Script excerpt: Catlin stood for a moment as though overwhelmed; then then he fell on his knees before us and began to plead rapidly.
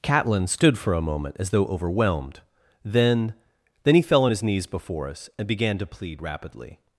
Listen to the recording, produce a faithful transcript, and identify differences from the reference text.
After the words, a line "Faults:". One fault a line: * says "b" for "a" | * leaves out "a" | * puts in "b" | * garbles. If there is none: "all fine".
Catlin stood for a moment as though overwhelmed; then then he fell on his knees before us and began to plead rapidly.
Faults:
all fine